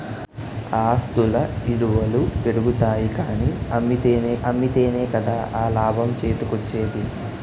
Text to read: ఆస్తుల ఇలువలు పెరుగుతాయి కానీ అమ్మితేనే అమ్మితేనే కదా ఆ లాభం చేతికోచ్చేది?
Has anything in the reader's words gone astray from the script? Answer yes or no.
no